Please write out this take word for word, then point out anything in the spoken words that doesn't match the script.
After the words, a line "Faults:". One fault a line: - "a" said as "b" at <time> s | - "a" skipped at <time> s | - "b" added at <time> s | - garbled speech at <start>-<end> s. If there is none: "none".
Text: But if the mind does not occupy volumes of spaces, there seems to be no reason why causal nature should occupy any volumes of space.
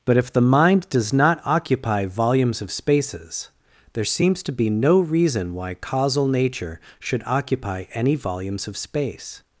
But if the mind does not occupy volumes of spaces, there seems to be no reason why causal nature should occupy any volumes of space.
Faults:
none